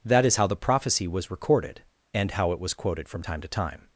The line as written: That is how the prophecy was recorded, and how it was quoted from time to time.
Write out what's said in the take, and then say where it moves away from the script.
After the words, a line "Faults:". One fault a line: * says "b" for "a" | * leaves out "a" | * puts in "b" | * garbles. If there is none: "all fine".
That is how the prophecy was recorded, and how it was quoted from time to time.
Faults:
all fine